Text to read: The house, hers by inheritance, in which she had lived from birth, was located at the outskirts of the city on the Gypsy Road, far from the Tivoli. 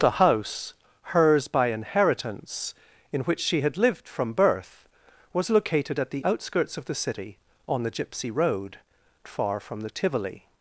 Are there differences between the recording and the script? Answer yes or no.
no